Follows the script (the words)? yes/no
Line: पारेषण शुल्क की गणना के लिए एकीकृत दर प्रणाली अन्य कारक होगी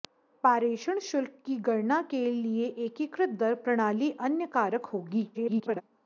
no